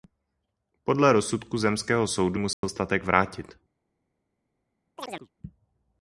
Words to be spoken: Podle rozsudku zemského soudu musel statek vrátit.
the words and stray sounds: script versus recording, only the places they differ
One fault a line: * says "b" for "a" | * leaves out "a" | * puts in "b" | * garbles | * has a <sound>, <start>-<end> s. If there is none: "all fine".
* has a dropout, 2.5-2.6 s
* has a chirp, 5.0-5.3 s